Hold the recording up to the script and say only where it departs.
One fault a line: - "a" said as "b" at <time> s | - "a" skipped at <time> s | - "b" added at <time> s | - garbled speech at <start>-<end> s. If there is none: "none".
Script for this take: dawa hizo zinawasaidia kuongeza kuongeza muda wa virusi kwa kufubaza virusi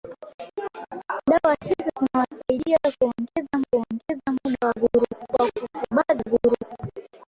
none